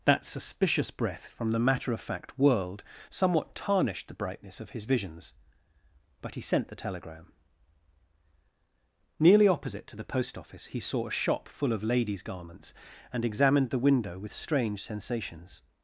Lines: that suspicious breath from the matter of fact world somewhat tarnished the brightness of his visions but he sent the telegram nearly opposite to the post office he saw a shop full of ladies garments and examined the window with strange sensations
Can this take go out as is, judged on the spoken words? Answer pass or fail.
pass